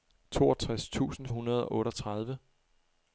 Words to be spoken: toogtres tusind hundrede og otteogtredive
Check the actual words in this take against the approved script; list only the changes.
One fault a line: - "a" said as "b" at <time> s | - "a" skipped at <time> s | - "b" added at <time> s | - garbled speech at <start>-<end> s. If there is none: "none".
none